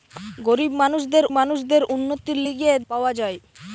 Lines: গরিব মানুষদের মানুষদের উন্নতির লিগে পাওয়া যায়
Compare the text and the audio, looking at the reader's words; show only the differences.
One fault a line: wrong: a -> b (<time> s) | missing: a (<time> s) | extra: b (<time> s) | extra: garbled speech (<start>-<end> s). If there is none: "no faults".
no faults